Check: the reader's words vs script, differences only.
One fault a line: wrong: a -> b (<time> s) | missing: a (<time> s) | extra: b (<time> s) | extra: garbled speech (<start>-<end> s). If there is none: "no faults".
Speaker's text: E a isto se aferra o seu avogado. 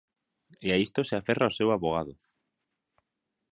no faults